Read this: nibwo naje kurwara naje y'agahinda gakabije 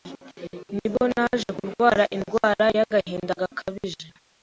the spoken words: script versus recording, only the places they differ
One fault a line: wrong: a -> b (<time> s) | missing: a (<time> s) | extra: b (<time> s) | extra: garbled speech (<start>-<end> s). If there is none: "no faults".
wrong: naje -> indwara (2.2 s)